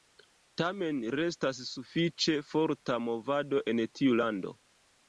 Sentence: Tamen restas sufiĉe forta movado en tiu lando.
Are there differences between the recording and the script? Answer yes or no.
no